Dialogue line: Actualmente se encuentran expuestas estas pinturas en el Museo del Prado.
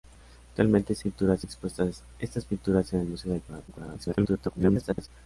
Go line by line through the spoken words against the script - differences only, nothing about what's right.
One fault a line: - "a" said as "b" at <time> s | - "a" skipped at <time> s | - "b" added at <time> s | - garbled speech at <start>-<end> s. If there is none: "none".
- "encuentran" said as "pinturas" at 1.0 s
- garbled speech at 3.7-5.1 s